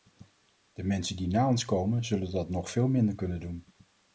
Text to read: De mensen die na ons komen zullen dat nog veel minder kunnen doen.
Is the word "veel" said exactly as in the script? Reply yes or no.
yes